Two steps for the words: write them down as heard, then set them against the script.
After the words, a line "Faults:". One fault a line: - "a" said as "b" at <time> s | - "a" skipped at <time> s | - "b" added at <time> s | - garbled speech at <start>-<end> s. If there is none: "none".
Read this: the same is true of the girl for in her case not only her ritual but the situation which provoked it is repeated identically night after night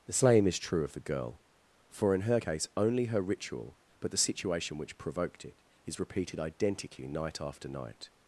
the same is true of the girl for in her case only her ritual but the situation which provoked it is repeated identically night after night
Faults:
- "not" skipped at 2.7 s